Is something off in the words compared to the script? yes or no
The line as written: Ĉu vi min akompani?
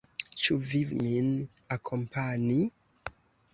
no